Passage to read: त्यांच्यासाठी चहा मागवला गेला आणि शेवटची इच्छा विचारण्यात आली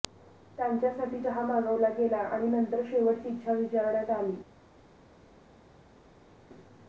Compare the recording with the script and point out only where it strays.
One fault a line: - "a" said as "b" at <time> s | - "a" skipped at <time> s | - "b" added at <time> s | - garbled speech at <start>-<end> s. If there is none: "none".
- "नंतर" added at 2.5 s